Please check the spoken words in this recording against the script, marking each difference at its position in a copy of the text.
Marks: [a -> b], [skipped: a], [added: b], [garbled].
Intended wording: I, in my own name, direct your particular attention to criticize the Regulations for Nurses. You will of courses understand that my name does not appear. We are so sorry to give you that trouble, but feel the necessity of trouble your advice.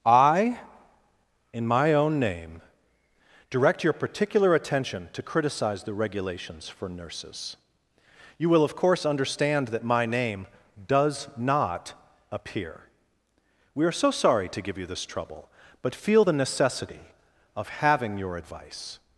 I, in my own name, direct your particular attention to criticize the Regulations for Nurses. You will of [courses -> course] understand that my name does not appear. We are so sorry to give you [that -> this] trouble, but feel the necessity of [trouble -> having] your advice.